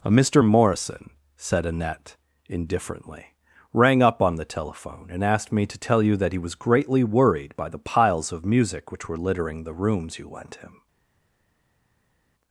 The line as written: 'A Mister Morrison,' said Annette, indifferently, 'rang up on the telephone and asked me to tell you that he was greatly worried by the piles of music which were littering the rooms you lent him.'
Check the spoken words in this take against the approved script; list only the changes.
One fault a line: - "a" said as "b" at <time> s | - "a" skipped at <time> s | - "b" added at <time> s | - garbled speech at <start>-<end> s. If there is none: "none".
none